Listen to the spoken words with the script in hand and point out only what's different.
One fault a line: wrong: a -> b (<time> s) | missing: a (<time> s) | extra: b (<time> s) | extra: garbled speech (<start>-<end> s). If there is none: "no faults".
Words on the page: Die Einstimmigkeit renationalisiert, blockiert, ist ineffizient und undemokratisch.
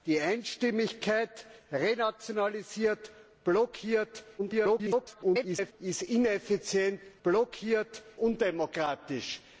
extra: garbled speech (4.4-5.7 s)
wrong: und -> blockiert (7.2 s)